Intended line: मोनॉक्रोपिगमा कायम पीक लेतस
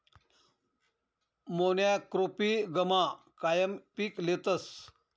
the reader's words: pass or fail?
pass